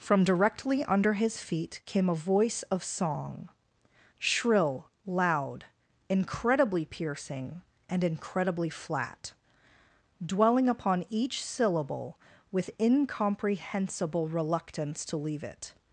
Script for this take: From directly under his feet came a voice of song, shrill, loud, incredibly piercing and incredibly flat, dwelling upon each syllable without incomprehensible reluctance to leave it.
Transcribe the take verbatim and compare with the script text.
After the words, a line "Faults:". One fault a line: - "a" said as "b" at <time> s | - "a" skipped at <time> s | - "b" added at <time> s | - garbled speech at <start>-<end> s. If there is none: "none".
From directly under his feet came a voice of song, shrill, loud, incredibly piercing and incredibly flat, dwelling upon each syllable with incomprehensible reluctance to leave it.
Faults:
- "without" said as "with" at 12.5 s